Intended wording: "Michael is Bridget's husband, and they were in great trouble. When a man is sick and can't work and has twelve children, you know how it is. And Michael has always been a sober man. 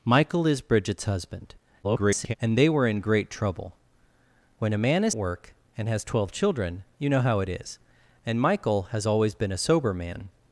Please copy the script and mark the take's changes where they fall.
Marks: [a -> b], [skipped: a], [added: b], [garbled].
"Michael is Bridget's husband, [garbled] and they were in great trouble. When a man is [skipped: sick and can't] work and has twelve children, you know how it is. And Michael has always been a sober man.